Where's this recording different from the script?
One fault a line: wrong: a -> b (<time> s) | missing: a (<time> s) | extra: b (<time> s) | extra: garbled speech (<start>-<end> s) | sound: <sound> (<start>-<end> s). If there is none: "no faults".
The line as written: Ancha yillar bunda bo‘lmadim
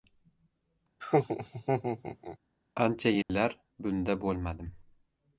sound: laugh (1.0-2.4 s)
sound: dropout (3.2-3.3 s)